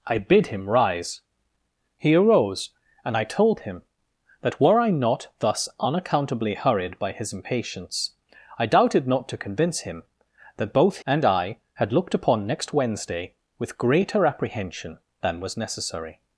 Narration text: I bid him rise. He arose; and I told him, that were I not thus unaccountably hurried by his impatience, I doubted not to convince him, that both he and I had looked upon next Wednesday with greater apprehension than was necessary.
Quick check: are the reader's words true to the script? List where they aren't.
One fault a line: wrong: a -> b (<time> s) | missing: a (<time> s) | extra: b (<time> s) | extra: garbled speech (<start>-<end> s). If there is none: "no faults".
missing: he (11.0 s)